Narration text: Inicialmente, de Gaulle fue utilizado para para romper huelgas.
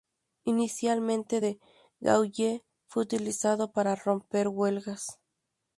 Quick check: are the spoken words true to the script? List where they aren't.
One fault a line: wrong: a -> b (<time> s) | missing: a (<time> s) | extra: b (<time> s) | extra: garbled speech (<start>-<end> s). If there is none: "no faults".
missing: para (4.0 s)